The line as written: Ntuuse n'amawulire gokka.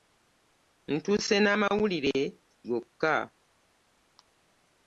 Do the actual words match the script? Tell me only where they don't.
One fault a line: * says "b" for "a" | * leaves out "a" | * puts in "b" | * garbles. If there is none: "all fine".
all fine